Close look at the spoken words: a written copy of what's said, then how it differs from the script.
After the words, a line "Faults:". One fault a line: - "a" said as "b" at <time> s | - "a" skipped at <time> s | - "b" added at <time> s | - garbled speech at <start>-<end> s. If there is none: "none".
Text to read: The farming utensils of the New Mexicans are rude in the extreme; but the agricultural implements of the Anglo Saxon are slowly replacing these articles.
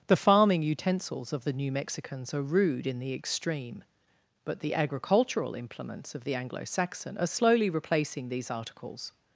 The farming utensils of the New Mexicans are rude in the extreme; but the agricultural implements of the Anglo Saxon are slowly replacing these articles.
Faults:
none